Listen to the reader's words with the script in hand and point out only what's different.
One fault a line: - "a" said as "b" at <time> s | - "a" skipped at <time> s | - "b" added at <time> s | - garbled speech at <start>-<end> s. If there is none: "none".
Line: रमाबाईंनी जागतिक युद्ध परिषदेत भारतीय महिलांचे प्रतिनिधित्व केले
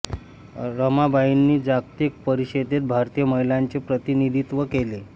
- "युद्ध" skipped at 2.2 s